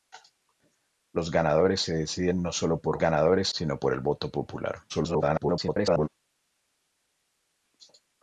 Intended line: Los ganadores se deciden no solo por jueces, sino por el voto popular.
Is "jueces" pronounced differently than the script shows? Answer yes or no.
yes